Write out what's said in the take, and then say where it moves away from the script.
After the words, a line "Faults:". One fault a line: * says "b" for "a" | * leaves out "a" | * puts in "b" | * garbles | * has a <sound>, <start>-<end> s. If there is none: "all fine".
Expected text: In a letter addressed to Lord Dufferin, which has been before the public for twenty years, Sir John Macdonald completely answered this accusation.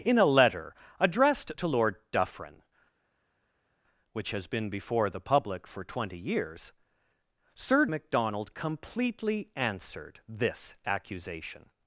In a letter addressed to Lord Dufferin, which has been before the public for twenty years, Sir Macdonald completely answered this accusation.
Faults:
* leaves out "John"